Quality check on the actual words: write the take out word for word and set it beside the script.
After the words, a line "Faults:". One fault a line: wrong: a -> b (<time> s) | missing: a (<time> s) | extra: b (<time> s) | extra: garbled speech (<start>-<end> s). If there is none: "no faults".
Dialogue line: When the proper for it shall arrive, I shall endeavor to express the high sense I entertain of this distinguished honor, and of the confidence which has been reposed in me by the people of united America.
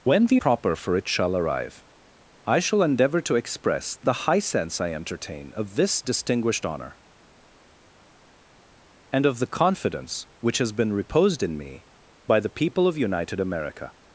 When the proper for it shall arrive, I shall endeavor to express the high sense I entertain of this distinguished honor, and of the confidence which has been reposed in me by the people of united America.
Faults:
no faults